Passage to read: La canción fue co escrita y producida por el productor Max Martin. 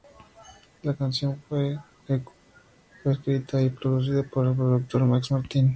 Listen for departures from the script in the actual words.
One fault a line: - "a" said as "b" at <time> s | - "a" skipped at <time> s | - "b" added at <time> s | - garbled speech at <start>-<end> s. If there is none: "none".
none